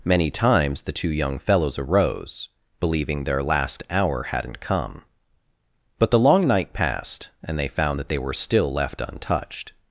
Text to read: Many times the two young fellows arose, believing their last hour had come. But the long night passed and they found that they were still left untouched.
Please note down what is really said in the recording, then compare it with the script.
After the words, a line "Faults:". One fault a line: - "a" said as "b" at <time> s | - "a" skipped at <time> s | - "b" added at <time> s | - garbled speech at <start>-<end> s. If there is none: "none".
Many times the two young fellows arose, believing their last hour hadn't come. But the long night passed and they found that they were still left untouched.
Faults:
- "had" said as "hadn't" at 4.2 s